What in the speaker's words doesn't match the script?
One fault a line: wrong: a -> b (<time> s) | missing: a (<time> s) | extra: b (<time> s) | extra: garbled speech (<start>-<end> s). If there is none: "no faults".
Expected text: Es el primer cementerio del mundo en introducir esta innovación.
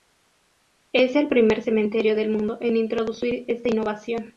no faults